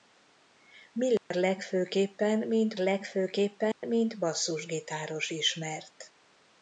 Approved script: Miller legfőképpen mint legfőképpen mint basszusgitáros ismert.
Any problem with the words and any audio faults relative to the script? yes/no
yes